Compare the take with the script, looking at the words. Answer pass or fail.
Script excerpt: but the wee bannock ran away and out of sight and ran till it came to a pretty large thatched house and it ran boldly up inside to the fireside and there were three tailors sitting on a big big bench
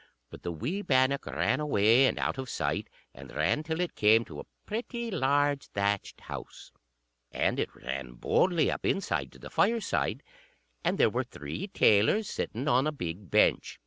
fail